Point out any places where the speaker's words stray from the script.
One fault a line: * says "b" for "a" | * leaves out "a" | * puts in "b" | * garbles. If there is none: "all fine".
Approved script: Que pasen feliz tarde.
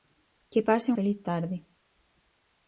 all fine